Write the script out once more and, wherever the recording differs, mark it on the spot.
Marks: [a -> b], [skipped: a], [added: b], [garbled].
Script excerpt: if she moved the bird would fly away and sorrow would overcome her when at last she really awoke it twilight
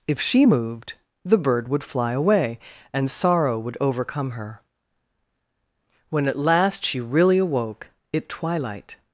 if she moved the bird would fly away and sorrow would overcome her when at last she really awoke it twilight